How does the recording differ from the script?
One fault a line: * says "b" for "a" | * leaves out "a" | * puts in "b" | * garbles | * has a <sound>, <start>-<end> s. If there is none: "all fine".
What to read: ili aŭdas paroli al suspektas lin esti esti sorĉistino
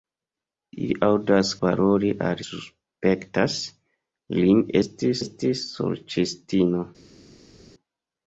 all fine